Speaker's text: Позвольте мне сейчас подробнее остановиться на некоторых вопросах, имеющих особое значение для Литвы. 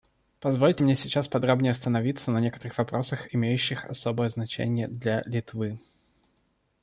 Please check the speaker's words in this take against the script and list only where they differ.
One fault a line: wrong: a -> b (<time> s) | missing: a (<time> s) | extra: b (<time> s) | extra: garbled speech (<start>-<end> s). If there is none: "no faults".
no faults